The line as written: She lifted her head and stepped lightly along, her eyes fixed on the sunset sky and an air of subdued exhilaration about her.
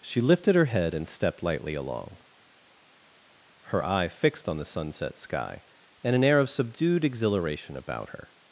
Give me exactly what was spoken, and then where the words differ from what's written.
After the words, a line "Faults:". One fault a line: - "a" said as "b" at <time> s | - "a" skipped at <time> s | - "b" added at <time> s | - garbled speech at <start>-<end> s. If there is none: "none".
She lifted her head and stepped lightly along, her eye fixed on the sunset sky and an air of subdued exhilaration about her.
Faults:
- "eyes" said as "eye" at 3.8 s